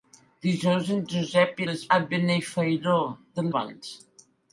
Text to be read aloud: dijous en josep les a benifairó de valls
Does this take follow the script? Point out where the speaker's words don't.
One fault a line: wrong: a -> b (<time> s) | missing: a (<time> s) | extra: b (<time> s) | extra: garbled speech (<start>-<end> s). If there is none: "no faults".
no faults